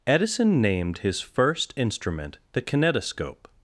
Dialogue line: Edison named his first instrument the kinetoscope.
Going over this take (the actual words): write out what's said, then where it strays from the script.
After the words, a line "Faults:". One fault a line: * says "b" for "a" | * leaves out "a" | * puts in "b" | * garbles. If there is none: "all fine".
Edison named his first instrument the kinetoscope.
Faults:
all fine